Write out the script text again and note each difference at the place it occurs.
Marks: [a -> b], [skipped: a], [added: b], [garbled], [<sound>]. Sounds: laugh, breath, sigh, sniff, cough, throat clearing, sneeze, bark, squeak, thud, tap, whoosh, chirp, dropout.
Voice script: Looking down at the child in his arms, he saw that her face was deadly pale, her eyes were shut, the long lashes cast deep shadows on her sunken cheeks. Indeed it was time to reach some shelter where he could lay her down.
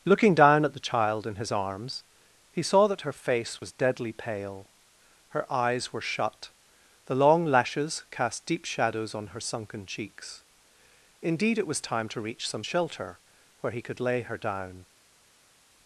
Looking down at the child in his arms, he saw that her face was deadly pale, her eyes were shut, the long lashes cast deep shadows on her sunken cheeks. Indeed it was time to reach some shelter where he could lay her down.